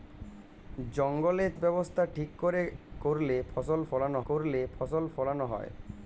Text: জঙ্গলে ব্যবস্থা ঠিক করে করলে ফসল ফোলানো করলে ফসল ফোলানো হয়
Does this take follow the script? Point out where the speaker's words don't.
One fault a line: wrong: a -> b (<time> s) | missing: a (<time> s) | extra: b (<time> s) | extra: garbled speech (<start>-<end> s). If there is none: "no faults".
no faults